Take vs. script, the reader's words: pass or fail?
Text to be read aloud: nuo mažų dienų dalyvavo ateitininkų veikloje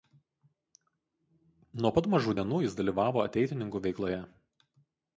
fail